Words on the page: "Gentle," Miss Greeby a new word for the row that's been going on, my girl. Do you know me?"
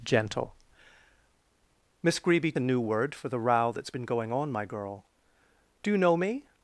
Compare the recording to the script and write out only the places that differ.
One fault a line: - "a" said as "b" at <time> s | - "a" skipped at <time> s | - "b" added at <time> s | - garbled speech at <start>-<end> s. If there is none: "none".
none